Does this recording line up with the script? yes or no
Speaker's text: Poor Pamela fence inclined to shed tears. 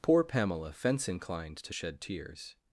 yes